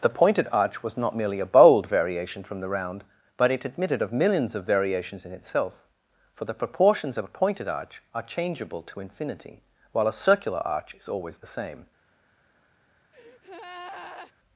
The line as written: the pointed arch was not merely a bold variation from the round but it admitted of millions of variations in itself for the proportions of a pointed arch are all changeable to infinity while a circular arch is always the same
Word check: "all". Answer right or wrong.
wrong